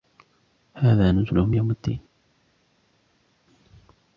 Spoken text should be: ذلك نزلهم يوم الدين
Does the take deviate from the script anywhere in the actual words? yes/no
yes